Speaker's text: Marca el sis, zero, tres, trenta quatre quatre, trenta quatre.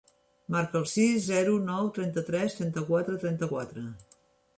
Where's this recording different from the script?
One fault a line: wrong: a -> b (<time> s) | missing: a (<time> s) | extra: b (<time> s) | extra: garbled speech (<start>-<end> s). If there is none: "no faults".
extra: nou trenta (1.7 s)
missing: quatre (3.2 s)